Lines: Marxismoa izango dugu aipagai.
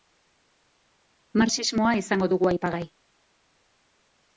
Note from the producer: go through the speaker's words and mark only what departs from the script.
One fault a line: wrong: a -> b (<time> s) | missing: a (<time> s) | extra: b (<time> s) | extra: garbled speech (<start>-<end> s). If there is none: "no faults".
no faults